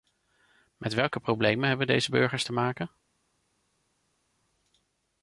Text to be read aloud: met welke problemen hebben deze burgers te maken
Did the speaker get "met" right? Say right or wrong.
right